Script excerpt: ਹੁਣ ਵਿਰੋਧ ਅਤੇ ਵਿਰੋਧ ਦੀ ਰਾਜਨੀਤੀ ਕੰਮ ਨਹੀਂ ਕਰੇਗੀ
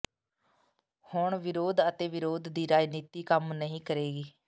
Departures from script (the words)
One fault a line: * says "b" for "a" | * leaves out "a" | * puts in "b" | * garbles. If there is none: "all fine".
all fine